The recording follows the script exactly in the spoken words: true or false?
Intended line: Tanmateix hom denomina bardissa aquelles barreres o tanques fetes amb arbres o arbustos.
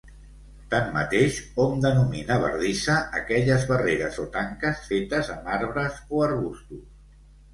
true